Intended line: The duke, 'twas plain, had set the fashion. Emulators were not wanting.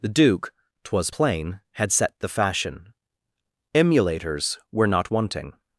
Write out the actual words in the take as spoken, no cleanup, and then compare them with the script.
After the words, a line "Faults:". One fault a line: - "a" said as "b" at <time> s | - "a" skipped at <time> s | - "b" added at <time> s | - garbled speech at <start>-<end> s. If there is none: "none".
The duke, 'twas plain, had set the fashion. Emulators were not wanting.
Faults:
none